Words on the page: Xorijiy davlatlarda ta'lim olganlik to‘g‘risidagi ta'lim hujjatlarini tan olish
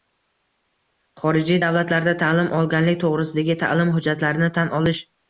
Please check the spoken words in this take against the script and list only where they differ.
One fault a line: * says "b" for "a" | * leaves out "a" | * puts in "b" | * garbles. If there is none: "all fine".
all fine